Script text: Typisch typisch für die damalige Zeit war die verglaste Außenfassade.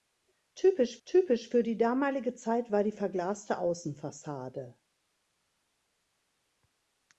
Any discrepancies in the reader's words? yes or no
no